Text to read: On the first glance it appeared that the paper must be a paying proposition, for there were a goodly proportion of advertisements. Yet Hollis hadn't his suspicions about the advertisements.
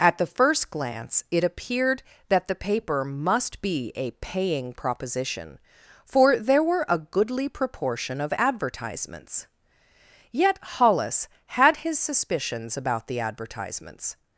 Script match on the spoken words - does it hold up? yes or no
no